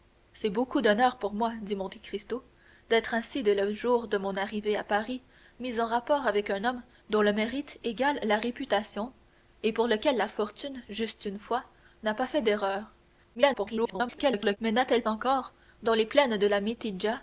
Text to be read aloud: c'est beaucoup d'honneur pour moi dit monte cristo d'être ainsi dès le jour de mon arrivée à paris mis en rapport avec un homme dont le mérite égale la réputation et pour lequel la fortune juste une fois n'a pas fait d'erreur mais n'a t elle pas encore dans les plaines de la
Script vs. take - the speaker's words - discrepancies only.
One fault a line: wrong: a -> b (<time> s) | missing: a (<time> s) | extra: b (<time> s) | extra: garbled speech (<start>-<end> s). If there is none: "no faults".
extra: garbled speech (13.3-14.6 s)
missing: pas (15.0 s)